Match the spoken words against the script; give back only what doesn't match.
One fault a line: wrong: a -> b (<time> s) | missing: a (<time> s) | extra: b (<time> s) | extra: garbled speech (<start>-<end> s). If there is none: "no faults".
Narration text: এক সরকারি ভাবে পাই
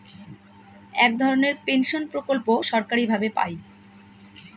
extra: ধরনের পেনশন প্রকল্প (1.2 s)